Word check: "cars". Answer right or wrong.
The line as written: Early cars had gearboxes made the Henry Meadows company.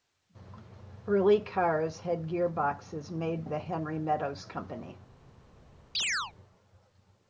right